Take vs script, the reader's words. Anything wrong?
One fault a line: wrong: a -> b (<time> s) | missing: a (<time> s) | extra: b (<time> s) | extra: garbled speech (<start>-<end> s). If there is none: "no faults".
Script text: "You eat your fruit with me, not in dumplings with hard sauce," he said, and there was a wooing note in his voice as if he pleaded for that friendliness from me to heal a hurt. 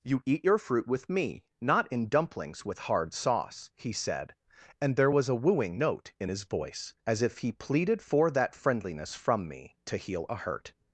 no faults